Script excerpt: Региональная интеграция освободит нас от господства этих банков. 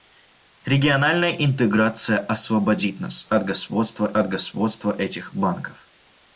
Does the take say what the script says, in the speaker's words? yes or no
no